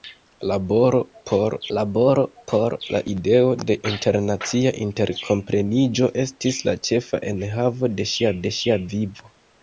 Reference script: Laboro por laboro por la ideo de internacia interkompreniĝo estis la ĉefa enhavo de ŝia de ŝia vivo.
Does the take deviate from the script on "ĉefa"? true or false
false